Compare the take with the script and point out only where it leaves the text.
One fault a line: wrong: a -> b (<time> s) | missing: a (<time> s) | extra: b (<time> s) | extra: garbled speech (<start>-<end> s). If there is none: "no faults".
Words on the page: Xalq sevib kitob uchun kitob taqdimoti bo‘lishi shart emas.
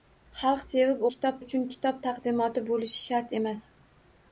no faults